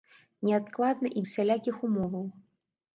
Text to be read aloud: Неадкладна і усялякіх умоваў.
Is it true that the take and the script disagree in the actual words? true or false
false